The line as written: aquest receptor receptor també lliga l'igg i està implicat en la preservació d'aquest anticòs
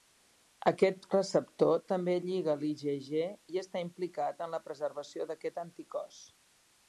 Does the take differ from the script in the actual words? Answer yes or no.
yes